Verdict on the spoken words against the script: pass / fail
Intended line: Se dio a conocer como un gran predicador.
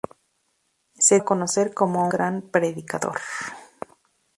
fail